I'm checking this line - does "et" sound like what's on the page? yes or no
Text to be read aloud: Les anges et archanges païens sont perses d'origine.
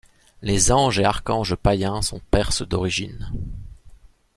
yes